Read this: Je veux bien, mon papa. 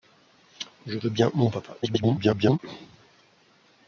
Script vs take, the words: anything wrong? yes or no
yes